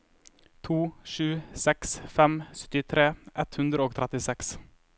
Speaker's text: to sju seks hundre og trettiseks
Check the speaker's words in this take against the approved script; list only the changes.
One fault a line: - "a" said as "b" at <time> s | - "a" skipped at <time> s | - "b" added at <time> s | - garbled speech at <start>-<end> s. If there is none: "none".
- "fem syttitre ett" added at 2.1 s